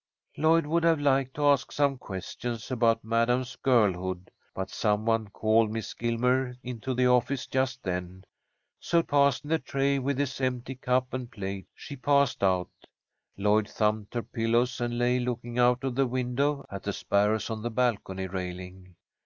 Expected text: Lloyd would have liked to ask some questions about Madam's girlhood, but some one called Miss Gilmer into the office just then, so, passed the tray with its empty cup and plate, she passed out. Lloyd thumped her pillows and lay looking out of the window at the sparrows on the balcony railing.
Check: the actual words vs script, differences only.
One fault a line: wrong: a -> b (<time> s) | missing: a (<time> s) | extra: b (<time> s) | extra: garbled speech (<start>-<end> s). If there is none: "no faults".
no faults